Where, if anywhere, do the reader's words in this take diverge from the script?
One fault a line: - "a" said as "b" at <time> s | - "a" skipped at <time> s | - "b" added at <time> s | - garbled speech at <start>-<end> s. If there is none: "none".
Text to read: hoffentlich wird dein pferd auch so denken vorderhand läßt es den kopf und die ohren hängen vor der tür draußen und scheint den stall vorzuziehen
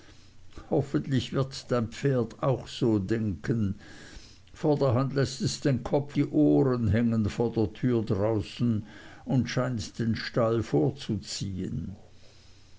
- "und" skipped at 6.2 s